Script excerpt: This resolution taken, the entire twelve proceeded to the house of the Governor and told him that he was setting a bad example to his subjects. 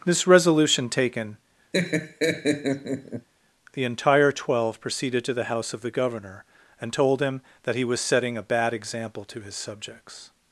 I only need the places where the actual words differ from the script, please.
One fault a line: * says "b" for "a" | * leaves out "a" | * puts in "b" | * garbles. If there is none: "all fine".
all fine